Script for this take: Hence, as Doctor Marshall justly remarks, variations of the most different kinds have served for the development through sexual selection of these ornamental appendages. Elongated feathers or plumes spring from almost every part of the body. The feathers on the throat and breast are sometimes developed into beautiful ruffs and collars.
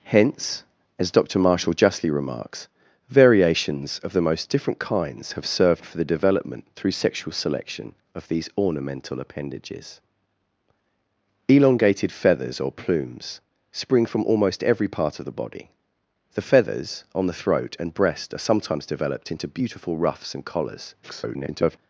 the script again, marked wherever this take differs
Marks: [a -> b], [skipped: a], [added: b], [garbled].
Hence, as Doctor Marshall justly remarks, variations of the most different kinds have served for the development through sexual selection of these ornamental appendages. Elongated feathers or plumes spring from almost every part of the body. The feathers on the throat and breast are sometimes developed into beautiful ruffs and collars. [garbled]